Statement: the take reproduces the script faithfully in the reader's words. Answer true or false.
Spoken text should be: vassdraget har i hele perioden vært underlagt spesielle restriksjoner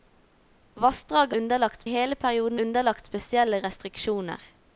false